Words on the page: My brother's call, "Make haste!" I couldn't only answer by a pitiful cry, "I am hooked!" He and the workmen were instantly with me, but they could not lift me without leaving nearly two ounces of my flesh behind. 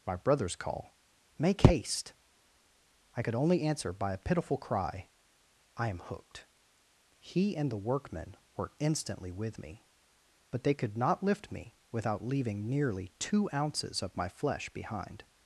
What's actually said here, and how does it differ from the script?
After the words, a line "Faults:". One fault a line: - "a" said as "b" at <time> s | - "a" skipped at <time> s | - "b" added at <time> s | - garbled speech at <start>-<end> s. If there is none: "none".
My brother's call, "Make haste!" I could only answer by a pitiful cry, "I am hooked!" He and the workmen were instantly with me, but they could not lift me without leaving nearly two ounces of my flesh behind.
Faults:
- "couldn't" said as "could" at 3.2 s